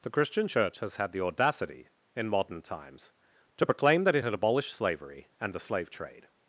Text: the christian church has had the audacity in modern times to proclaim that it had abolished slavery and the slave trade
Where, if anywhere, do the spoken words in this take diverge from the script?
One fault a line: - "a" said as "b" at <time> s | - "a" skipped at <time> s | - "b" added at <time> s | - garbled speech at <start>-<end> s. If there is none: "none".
none